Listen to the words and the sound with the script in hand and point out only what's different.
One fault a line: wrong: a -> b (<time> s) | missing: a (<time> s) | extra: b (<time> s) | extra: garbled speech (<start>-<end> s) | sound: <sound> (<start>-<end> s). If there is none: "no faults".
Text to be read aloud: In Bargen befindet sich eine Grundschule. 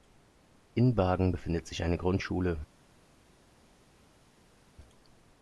no faults